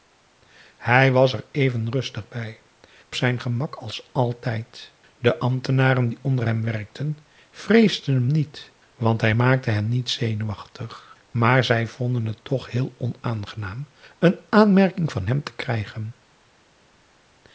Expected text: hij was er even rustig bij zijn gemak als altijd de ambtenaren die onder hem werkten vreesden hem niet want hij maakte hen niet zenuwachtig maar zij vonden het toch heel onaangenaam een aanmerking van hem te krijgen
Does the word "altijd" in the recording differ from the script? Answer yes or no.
no